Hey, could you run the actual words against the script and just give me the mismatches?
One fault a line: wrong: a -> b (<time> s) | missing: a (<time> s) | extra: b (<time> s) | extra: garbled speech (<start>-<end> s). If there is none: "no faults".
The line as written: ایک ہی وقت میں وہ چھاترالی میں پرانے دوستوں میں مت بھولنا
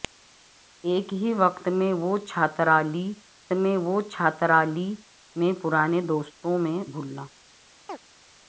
extra: وہ چھاترالی میں (3.8 s)
missing: مت (6.8 s)